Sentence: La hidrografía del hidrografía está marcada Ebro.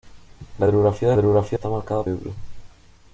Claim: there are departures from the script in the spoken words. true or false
false